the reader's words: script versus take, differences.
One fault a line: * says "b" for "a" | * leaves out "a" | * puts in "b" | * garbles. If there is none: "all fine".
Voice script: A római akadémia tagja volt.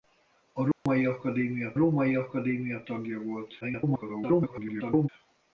* puts in "római akadémia"
* garbles